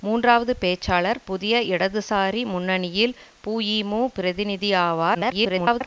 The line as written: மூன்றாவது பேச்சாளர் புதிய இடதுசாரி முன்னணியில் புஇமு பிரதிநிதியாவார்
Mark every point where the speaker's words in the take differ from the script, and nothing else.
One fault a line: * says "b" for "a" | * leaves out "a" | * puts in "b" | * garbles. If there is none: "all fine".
* garbles